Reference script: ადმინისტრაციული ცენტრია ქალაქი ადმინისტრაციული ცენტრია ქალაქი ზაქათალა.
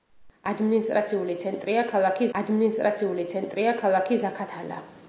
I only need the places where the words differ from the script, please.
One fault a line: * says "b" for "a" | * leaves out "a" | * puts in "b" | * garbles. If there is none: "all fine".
all fine